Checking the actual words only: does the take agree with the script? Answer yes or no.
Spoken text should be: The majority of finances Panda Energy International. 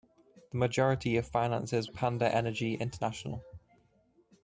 yes